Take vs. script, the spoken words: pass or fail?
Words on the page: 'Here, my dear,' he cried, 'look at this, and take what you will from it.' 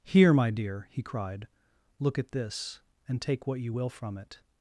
pass